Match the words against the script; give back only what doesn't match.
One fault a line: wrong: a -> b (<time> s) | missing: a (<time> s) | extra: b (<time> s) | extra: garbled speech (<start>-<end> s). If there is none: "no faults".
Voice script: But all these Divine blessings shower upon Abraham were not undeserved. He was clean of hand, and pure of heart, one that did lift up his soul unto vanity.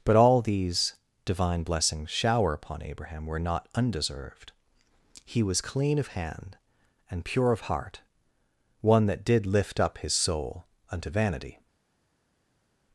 no faults